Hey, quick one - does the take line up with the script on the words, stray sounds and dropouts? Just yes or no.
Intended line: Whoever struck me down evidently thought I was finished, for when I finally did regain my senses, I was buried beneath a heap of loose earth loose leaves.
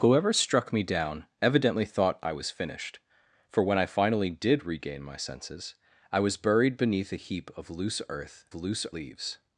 yes